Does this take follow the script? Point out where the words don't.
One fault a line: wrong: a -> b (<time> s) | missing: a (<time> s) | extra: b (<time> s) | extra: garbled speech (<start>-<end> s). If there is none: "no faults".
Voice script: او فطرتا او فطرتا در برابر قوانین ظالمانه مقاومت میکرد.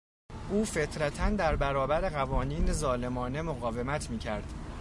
missing: او فطرتا (1.3 s)